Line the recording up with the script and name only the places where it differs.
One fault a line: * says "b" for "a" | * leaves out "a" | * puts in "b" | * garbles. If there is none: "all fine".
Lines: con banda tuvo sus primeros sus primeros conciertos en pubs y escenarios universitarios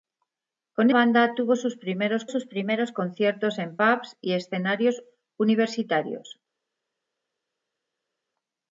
all fine